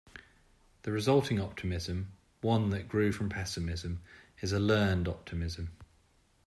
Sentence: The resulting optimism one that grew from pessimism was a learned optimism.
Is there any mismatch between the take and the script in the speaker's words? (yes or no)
yes